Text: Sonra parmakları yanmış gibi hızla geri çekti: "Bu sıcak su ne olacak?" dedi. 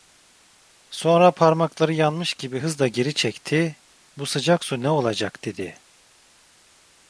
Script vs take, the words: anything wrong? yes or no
no